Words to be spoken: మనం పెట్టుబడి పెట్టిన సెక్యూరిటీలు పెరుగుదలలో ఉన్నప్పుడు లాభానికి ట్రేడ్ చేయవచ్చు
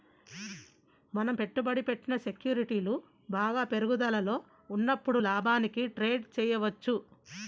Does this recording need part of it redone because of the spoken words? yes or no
yes